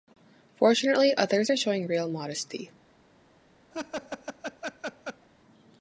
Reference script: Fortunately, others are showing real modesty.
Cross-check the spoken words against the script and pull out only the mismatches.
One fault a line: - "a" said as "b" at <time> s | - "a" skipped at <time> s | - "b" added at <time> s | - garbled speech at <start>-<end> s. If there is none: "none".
none